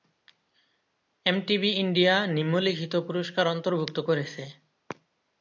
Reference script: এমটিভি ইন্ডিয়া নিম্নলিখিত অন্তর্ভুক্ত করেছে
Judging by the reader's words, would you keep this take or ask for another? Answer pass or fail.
fail